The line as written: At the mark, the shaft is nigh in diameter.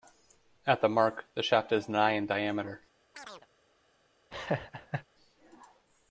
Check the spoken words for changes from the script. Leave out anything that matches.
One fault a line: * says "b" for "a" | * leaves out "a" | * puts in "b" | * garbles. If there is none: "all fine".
all fine